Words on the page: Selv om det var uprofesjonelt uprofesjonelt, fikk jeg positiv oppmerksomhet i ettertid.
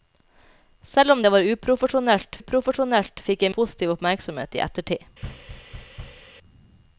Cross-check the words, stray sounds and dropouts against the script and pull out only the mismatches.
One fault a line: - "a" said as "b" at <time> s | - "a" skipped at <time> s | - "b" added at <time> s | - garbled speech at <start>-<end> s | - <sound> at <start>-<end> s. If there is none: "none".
- thud at 5.2-6.3 s